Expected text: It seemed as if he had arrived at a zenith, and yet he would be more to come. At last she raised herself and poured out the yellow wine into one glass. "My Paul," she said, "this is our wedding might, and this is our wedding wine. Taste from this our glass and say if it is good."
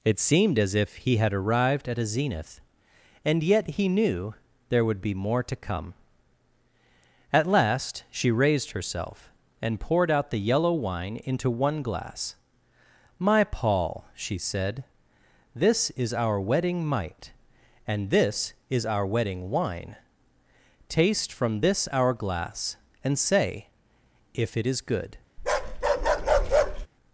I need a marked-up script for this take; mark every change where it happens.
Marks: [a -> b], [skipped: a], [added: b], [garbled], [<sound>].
It seemed as if he had arrived at a zenith, and yet he [added: knew there] would be more to come. At last she raised herself and poured out the yellow wine into one glass. "My Paul," she said, "this is our wedding might, and this is our wedding wine. Taste from this our glass and say if it is good." [bark]